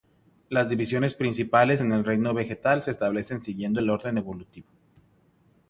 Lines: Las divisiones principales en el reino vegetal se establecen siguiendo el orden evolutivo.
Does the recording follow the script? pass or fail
pass